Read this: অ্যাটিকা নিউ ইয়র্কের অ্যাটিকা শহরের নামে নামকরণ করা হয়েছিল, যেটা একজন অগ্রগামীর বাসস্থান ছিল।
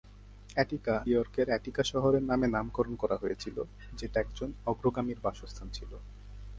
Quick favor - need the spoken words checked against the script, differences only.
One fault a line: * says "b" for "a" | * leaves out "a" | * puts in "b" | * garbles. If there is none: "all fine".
* leaves out "নিউ"